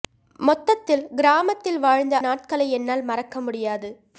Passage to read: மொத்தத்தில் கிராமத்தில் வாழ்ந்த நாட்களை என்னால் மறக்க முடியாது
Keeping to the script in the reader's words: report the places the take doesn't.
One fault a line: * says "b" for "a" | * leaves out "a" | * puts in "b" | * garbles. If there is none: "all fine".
all fine